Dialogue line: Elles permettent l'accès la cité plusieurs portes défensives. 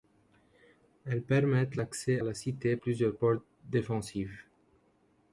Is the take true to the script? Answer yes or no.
yes